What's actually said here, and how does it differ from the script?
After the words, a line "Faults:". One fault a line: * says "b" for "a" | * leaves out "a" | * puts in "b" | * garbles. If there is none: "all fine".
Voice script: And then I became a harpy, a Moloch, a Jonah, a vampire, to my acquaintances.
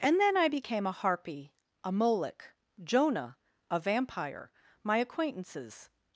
And then I became a harpy, a Moloch, Jonah, a vampire, my acquaintances.
Faults:
* leaves out "a"
* leaves out "to"